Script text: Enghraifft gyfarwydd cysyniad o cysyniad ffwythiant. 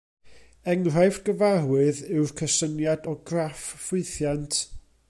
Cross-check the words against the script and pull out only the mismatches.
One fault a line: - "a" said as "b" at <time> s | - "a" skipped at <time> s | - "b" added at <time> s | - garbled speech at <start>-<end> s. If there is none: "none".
- "yw'r" added at 2.1 s
- "cysyniad" said as "graff" at 3.3 s